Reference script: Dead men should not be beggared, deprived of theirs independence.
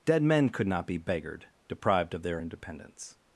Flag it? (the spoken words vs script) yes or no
yes